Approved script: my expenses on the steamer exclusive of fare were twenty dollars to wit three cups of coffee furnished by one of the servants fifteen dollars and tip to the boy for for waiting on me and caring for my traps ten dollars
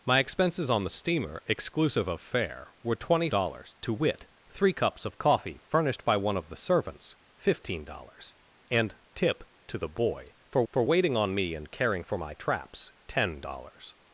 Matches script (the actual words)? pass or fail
pass